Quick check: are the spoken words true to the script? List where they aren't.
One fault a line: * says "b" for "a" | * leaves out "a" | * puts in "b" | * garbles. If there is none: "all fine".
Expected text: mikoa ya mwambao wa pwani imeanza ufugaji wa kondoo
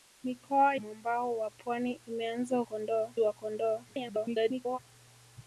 * leaves out "ya"
* says "kondoo" for "ufugaji"
* garbles